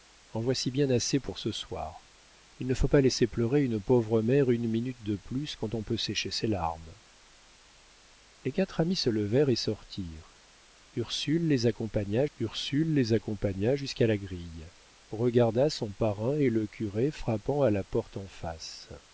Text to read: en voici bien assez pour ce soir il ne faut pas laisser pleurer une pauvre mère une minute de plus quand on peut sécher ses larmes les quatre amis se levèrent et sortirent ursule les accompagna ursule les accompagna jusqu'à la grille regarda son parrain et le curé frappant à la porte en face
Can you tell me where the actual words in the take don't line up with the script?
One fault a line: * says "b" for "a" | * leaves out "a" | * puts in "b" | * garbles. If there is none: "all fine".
all fine